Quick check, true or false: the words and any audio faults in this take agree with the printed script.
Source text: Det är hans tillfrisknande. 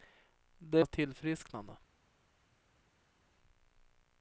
true